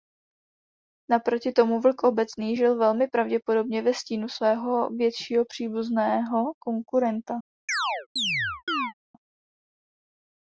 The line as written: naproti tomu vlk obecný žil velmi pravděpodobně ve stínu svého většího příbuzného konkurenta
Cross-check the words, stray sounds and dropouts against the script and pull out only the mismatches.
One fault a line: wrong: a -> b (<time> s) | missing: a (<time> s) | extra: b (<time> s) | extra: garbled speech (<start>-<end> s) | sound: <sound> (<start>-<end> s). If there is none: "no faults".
sound: chirp (7.7-8.9 s)